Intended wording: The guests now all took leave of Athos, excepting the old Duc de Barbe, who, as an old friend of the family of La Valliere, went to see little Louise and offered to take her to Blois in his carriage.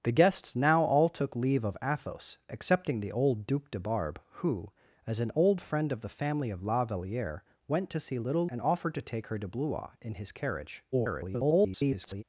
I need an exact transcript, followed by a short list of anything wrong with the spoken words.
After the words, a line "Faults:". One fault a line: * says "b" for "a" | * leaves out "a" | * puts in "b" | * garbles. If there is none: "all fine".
The guests now all took leave of Athos, excepting the old Duc de Barbe, who, as an old friend of the family of La Valliere, went to see little And offered to take her to Blois in his carriage. [garbled]
Faults:
* leaves out "Louise"
* garbles